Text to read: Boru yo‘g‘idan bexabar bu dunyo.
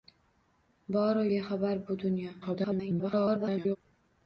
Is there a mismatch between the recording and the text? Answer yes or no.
yes